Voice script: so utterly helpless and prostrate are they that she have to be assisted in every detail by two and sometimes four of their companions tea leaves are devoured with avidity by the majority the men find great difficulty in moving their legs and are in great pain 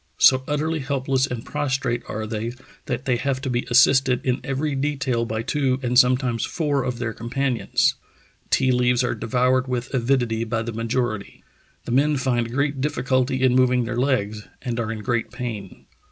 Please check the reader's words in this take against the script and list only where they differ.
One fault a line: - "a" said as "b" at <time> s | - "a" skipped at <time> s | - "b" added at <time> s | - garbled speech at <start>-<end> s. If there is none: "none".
- "she" said as "they" at 3.0 s